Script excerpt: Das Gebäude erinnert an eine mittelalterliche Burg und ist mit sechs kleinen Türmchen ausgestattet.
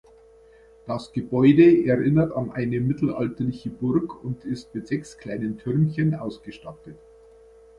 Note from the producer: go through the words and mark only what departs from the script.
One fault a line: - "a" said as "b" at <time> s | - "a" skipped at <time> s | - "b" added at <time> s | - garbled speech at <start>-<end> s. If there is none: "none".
none